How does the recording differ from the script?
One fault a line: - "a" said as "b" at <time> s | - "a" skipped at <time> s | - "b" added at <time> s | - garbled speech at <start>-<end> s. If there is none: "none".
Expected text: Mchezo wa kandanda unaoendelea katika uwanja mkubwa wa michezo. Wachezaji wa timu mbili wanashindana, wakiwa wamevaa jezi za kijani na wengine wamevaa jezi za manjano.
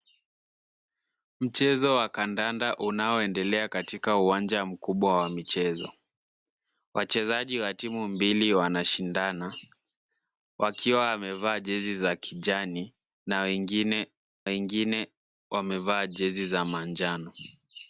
- "wengine" added at 14.4 s